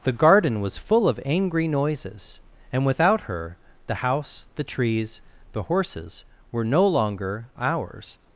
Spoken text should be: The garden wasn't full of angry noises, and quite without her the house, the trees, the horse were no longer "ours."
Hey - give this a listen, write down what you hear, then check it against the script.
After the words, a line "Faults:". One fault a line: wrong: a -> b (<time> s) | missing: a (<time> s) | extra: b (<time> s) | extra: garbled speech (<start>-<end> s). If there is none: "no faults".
The garden was full of angry noises, and without her the house, the trees, the horses were no longer "ours."
Faults:
wrong: wasn't -> was (0.6 s)
missing: quite (2.9 s)
wrong: horse -> horses (5.6 s)